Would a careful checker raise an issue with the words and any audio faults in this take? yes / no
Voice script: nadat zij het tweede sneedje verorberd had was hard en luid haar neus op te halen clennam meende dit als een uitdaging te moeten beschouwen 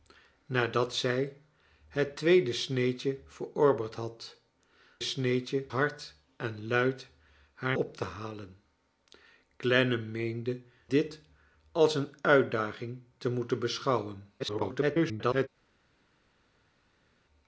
yes